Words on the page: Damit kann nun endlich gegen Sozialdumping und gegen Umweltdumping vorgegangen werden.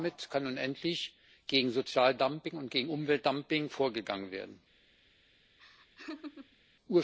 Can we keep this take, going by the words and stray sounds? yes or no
no